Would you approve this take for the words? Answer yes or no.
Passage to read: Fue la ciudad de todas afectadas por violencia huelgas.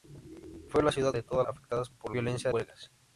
yes